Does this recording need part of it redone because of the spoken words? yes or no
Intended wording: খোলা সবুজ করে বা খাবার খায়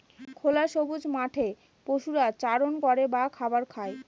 yes